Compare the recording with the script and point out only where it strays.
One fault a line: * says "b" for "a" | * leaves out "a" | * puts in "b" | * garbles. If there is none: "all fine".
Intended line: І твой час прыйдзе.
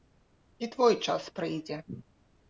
all fine